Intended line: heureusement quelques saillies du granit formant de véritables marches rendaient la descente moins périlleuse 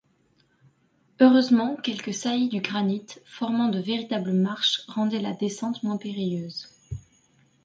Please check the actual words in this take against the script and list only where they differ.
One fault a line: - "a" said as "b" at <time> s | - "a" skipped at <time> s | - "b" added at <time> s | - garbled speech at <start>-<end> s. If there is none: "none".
none